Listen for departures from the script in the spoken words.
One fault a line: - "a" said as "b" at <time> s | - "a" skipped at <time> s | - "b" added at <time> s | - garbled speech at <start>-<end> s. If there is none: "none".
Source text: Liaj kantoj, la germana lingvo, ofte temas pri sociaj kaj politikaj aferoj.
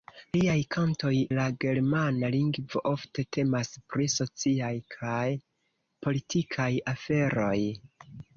none